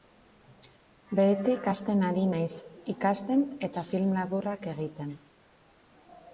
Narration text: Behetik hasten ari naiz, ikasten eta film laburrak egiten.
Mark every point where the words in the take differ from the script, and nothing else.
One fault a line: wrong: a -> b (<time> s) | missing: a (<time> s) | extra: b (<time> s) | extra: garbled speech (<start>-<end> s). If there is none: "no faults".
no faults